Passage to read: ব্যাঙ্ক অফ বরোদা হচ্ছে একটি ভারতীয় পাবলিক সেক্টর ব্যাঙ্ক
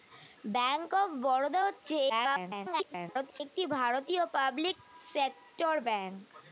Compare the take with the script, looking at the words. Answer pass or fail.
fail